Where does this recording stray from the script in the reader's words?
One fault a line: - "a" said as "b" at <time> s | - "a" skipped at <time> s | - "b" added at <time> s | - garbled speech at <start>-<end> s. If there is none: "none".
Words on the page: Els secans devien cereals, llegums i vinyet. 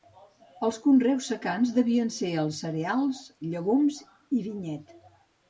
- "conreus" added at 0.8 s
- "ser els" added at 2.1 s